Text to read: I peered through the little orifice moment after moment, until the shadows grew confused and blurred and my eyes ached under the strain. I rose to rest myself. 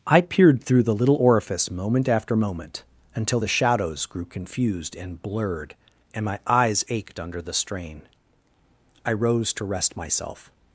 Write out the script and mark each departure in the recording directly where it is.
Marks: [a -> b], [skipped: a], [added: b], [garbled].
I peered through the little orifice moment after moment, until the shadows grew confused and blurred and my eyes ached under the strain. I rose to rest myself.